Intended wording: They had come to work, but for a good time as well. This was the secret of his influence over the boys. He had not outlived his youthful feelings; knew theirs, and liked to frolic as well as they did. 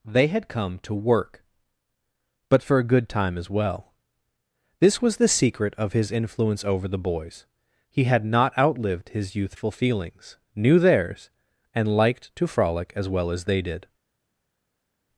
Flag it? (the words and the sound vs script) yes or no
no